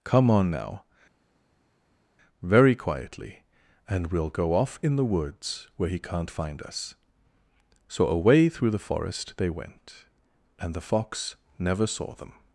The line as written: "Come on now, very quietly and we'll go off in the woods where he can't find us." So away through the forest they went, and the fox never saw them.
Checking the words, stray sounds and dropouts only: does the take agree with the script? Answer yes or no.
yes